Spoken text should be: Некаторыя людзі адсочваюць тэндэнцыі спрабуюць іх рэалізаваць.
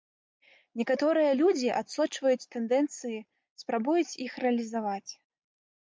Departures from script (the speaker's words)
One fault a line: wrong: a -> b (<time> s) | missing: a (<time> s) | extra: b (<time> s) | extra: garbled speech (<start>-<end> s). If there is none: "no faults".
no faults